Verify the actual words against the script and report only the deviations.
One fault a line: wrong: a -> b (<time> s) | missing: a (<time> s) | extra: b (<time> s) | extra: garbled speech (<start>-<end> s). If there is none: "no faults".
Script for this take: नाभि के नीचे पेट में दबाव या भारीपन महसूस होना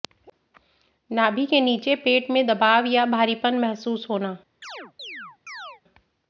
no faults